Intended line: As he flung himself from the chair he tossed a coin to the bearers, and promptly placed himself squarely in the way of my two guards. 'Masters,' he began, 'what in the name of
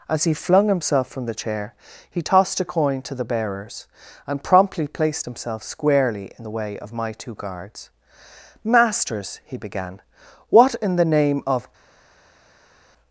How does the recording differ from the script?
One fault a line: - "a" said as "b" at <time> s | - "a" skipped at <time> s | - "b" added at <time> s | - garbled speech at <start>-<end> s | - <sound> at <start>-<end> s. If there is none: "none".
none